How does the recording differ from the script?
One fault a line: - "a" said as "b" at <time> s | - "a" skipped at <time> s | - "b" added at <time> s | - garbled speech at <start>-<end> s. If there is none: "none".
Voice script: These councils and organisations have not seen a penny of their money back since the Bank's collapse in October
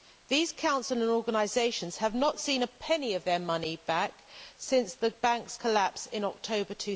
none